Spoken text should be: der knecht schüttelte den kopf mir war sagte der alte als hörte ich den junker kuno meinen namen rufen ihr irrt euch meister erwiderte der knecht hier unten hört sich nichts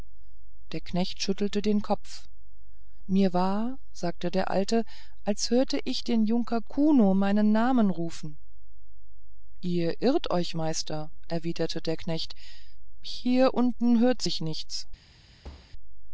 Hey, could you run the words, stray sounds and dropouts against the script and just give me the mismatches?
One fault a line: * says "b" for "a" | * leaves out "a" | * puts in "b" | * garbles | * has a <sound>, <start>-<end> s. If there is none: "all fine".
* has a thud, 15.4-15.7 s